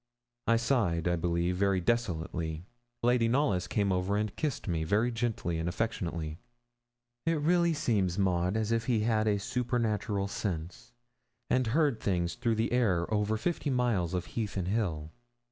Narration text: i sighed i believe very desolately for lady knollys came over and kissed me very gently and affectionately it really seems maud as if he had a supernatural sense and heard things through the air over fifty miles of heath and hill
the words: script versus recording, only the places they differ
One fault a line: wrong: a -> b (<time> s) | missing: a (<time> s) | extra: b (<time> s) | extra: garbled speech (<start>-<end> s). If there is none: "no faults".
missing: for (2.6 s)